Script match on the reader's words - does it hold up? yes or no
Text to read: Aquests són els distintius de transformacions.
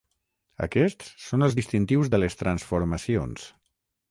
no